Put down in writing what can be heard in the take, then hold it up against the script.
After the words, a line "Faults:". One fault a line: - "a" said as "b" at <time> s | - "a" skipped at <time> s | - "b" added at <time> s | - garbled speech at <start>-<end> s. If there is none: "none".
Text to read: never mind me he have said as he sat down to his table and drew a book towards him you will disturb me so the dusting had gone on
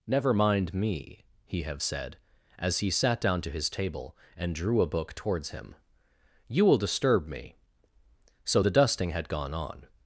never mind me he have said as he sat down to his table and drew a book towards him you will disturb me so the dusting had gone on
Faults:
none